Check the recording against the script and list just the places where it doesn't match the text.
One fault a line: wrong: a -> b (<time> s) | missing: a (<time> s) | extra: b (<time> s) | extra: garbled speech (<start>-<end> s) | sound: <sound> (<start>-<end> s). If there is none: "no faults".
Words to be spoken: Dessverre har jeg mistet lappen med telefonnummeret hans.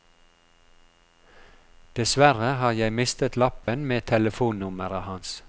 sound: dropout (3.6-3.7 s)